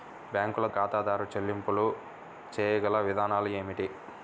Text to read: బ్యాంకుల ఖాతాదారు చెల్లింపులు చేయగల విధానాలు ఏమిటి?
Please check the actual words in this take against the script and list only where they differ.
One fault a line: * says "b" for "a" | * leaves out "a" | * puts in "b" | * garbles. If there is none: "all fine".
all fine